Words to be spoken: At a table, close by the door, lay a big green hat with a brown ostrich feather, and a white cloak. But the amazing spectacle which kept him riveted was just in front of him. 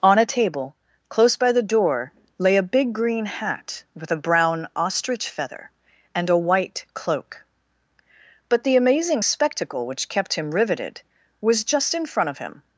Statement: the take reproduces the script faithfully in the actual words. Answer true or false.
false